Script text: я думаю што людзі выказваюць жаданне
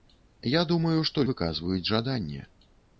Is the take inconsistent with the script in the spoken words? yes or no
yes